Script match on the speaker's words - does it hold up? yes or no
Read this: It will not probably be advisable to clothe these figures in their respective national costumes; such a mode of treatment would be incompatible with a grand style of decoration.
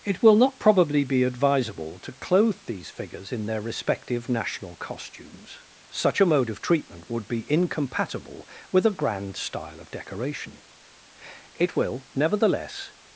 no